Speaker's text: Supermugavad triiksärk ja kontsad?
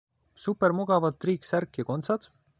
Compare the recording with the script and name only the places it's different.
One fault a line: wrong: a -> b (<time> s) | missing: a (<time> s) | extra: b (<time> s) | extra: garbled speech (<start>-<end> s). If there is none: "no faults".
no faults